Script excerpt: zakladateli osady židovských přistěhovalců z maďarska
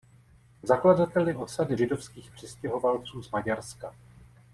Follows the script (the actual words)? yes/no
yes